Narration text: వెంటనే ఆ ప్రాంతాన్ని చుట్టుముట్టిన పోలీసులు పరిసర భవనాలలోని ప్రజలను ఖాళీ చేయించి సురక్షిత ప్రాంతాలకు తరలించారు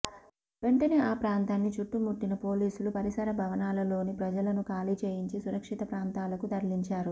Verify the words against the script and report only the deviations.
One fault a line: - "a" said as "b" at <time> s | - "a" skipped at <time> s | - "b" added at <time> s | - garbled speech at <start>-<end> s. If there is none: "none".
none